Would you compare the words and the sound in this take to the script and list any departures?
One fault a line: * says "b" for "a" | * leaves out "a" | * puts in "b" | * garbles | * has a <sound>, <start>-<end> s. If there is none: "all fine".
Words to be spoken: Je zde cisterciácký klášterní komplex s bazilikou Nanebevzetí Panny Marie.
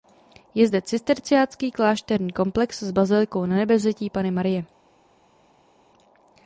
all fine